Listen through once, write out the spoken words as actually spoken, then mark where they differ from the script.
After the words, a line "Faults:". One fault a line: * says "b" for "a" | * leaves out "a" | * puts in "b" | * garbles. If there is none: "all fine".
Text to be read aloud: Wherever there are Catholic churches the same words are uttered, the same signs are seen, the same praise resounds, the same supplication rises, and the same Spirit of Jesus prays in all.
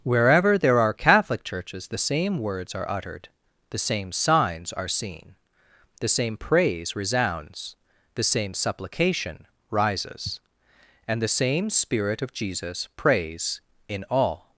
Wherever there are Catholic churches the same words are uttered, the same signs are seen, the same praise resounds, the same supplication rises, and the same Spirit of Jesus prays in all.
Faults:
all fine